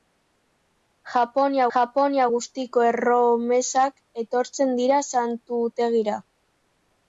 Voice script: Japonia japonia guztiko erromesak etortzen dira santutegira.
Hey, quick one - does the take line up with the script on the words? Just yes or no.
yes